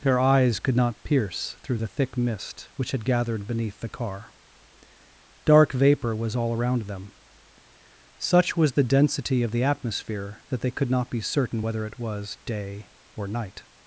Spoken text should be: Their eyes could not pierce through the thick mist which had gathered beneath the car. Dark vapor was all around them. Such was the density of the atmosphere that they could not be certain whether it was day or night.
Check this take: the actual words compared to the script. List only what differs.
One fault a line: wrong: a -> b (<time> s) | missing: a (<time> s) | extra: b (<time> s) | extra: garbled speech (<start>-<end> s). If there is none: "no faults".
no faults